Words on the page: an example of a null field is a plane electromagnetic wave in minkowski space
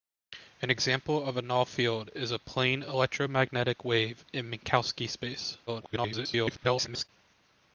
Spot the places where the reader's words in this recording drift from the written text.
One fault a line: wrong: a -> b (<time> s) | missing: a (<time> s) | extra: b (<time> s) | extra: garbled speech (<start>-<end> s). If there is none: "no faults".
extra: garbled speech (5.7-7.1 s)